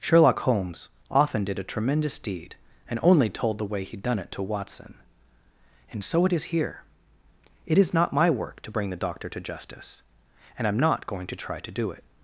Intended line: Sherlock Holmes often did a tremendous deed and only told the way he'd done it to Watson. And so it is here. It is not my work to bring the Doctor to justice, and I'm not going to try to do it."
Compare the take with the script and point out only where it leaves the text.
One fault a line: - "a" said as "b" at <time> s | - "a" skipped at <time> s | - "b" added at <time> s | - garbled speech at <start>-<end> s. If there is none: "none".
none